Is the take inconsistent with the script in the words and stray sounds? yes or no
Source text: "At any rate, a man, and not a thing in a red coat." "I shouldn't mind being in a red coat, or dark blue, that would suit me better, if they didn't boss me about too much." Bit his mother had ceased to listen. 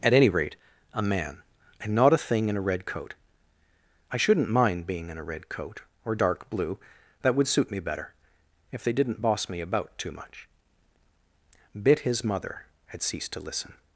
no